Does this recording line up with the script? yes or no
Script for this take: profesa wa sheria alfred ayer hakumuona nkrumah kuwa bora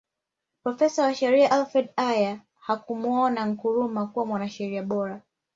no